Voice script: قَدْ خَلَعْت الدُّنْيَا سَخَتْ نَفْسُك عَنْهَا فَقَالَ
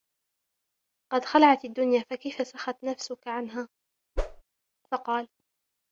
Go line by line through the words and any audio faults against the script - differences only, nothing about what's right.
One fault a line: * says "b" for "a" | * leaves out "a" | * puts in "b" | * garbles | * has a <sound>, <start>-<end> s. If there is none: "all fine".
* puts in "فَكَيْفَ"
* has a whoosh, 4.2-4.4 s